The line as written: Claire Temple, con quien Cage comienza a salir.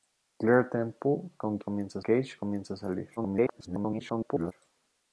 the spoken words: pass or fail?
fail